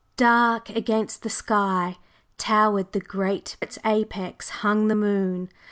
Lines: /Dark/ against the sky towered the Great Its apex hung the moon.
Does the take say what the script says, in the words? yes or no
yes